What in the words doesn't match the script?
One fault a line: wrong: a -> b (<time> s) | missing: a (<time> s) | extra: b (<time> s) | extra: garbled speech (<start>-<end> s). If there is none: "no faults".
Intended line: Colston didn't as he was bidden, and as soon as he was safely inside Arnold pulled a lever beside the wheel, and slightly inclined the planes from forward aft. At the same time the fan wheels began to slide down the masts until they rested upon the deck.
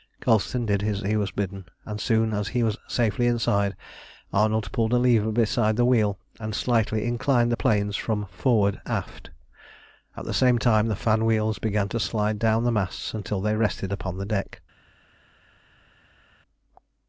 wrong: didn't -> did (0.7 s)